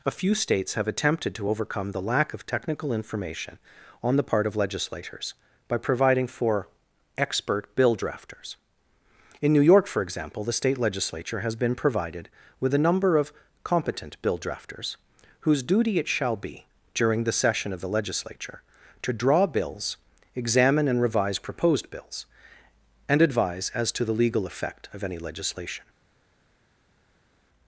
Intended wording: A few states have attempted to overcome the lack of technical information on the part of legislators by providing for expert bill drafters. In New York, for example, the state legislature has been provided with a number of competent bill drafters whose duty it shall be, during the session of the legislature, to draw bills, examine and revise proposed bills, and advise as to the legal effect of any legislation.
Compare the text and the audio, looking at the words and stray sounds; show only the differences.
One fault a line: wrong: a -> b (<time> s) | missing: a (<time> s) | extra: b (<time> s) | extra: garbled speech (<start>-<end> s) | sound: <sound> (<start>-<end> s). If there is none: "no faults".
no faults